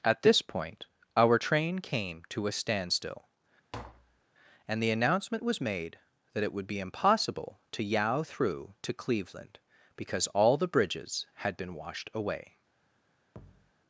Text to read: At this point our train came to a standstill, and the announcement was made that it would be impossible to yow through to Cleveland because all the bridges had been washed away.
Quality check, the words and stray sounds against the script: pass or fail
fail